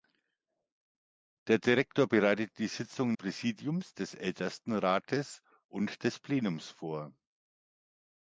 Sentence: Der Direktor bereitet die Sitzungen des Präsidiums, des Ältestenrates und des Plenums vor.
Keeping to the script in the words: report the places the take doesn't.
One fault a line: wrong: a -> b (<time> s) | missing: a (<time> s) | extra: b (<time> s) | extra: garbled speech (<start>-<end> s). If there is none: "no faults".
missing: des (3.2 s)